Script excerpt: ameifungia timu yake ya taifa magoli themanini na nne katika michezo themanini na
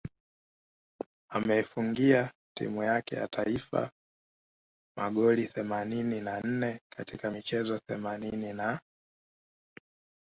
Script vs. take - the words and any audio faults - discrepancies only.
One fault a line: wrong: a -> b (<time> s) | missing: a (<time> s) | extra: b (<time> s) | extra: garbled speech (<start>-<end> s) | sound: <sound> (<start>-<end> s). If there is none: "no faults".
no faults